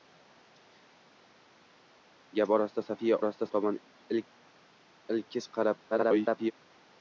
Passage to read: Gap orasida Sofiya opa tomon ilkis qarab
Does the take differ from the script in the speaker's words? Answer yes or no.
yes